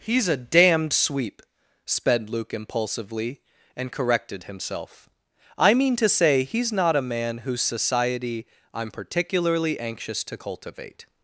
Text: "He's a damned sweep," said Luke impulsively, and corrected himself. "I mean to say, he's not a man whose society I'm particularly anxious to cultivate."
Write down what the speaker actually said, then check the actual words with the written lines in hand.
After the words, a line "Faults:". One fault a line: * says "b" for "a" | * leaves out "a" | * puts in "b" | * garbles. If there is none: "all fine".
"He's a damned sweep," sped Luke impulsively, and corrected himself. "I mean to say, he's not a man whose society I'm particularly anxious to cultivate."
Faults:
* says "sped" for "said"